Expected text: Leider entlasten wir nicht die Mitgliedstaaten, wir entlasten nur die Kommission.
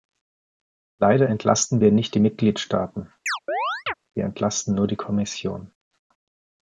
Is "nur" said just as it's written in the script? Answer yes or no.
yes